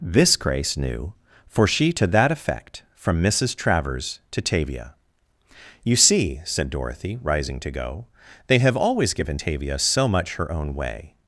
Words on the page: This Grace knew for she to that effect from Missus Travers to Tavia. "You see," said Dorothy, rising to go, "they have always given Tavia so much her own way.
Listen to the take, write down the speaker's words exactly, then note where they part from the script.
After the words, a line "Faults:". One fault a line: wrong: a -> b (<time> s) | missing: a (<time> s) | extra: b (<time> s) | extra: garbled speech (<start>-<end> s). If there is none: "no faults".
This Grace knew for she to that effect from Missus Travers to Tavia. "You see," said Dorothy, rising to go, "they have always given Tavia so much her own way.
Faults:
no faults